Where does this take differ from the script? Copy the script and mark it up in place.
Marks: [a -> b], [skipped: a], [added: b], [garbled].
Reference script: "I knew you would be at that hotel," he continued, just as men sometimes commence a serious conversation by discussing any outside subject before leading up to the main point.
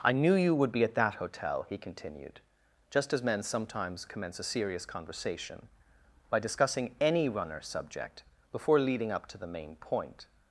"I knew you would be at that hotel," he continued, just as men sometimes commence a serious conversation by discussing any [outside -> runner] subject before leading up to the main point.